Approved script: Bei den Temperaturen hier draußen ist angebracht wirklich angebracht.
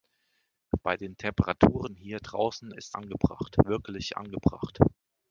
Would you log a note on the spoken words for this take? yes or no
no